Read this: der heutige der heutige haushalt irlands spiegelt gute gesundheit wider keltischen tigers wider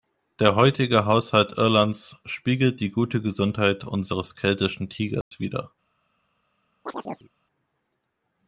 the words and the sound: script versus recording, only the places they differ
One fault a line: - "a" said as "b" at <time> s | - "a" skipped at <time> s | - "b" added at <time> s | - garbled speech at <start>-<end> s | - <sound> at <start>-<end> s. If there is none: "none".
- "der heutige" skipped at 1.1 s
- "die" added at 2.8 s
- "wider" said as "unseres" at 3.8 s
- dropout at 5.2-5.3 s
- chirp at 6.9-7.3 s